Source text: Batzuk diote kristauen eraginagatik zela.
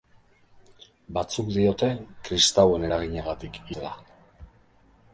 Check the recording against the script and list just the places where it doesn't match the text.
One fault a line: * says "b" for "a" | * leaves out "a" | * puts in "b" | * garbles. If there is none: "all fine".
all fine